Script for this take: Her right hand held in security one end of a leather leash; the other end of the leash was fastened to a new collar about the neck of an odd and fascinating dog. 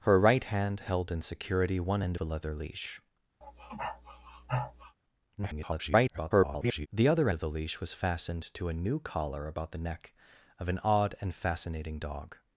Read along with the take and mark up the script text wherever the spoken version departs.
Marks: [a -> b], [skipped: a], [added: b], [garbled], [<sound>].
Her right hand held in security one end [skipped: of] a leather leash; [sniff] [garbled] the other [skipped: end] of the leash was fastened to a new collar about the neck of an odd and fascinating dog.